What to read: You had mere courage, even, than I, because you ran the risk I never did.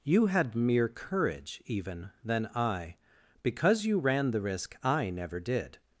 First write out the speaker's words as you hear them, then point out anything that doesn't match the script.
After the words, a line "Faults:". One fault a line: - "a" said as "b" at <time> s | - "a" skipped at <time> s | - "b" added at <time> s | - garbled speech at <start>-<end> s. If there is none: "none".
You had mere courage, even, than I, because you ran the risk I never did.
Faults:
none